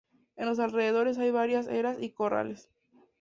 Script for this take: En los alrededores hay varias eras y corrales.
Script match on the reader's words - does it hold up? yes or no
yes